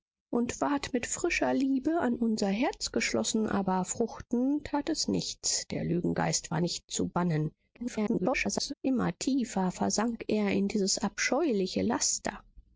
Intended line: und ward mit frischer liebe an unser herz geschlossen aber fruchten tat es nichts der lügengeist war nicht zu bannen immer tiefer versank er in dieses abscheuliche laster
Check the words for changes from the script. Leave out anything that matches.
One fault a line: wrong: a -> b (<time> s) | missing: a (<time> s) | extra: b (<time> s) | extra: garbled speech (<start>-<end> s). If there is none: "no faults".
extra: garbled speech (7.7-8.7 s)